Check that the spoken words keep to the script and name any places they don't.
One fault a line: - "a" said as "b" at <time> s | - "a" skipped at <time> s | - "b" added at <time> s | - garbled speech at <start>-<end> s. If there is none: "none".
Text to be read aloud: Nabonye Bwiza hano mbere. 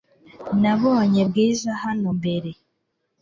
none